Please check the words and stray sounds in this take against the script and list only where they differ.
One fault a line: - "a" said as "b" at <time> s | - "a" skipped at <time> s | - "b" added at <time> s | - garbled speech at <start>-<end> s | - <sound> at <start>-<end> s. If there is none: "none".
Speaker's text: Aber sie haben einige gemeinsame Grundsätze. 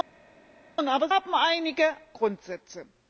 - "sie" skipped at 1.1 s
- "gemeinsame" skipped at 1.8 s